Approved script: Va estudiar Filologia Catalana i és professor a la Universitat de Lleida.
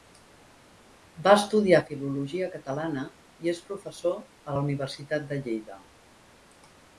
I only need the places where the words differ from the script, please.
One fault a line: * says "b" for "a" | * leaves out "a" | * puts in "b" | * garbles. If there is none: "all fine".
all fine